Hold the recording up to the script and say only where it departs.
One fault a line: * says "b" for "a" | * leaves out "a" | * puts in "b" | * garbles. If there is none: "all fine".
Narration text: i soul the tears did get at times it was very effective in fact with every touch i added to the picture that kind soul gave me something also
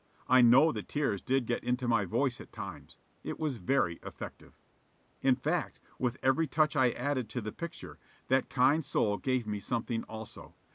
* says "know" for "soul"
* puts in "into my voice"